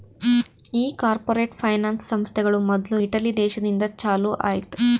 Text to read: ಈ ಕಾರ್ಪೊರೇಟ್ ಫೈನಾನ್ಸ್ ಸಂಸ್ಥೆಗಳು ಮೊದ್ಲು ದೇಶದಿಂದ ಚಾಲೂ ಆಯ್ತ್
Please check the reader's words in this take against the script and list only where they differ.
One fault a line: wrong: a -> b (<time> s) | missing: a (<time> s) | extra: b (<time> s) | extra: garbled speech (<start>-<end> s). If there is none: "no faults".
extra: ಇಟಲಿ (3.0 s)